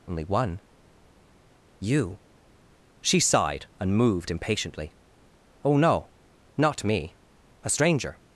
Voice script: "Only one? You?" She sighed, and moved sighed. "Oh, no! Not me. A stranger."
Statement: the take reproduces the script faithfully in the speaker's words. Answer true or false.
false